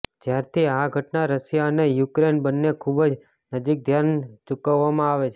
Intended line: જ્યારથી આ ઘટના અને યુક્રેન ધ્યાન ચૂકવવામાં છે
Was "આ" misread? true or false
false